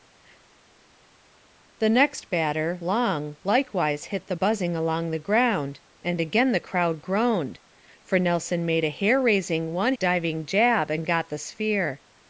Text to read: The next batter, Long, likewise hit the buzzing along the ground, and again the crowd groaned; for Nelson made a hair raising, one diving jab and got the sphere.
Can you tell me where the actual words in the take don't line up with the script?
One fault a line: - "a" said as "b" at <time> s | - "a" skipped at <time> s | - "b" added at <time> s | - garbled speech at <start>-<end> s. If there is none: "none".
none